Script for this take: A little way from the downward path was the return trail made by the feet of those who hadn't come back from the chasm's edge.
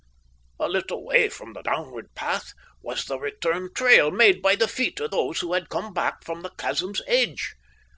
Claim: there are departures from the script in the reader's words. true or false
true